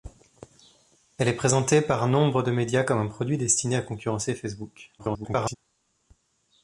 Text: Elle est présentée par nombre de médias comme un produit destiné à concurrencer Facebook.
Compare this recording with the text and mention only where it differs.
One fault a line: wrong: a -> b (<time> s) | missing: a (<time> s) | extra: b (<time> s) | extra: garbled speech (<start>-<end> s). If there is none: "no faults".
extra: garbled speech (5.0-5.6 s)